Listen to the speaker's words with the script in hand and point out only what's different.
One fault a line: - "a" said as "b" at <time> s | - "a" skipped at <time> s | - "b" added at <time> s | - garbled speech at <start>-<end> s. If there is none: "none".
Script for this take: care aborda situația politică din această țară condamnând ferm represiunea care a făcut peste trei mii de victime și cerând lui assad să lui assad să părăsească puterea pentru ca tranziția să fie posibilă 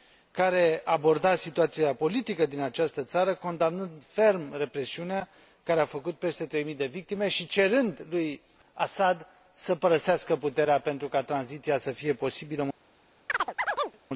- "lui assad să" skipped at 9.7 s